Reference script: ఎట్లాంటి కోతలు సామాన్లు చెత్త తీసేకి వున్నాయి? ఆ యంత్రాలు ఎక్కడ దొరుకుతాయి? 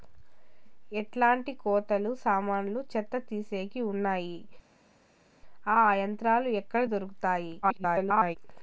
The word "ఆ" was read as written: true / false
true